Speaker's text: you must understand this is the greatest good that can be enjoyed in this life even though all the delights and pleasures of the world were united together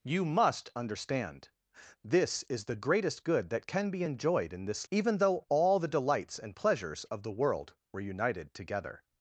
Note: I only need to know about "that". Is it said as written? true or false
true